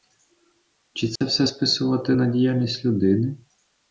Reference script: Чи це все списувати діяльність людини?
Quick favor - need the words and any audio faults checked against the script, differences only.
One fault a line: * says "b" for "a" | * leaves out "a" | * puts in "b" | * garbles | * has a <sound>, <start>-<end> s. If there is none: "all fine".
* has a dropout, 1.2-1.2 s
* puts in "на"